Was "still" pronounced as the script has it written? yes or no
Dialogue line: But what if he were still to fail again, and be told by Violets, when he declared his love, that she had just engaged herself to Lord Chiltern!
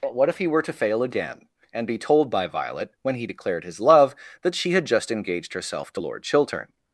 no